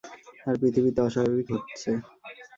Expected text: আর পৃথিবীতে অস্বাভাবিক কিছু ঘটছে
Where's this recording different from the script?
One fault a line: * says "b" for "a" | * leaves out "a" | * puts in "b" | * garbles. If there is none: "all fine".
* leaves out "কিছু"